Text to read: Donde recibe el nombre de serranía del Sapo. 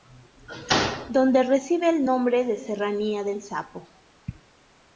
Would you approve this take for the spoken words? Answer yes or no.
yes